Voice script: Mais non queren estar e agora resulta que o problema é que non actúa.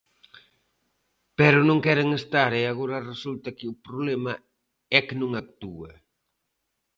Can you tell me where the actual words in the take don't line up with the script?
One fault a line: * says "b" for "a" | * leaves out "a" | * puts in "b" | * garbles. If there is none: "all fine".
* says "Pero" for "Mais"